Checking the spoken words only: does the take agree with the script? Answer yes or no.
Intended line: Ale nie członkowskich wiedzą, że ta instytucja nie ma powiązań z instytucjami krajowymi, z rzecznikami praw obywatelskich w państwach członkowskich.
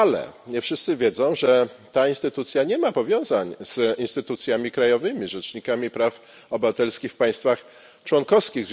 no